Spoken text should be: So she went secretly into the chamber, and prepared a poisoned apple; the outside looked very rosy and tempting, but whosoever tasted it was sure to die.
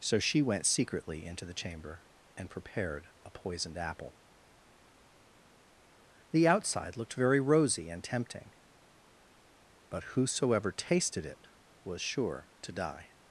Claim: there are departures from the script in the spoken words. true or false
false